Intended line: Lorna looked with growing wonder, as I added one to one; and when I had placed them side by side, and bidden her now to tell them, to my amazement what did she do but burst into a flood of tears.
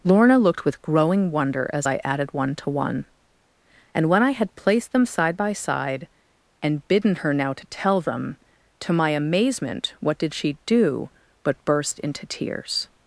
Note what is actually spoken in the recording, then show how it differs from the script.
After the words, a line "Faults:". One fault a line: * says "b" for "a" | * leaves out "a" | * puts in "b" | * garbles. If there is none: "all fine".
Lorna looked with growing wonder, as I added one to one; and when I had placed them side by side, and bidden her now to tell them, to my amazement what did she do but burst into tears.
Faults:
* leaves out "a flood of"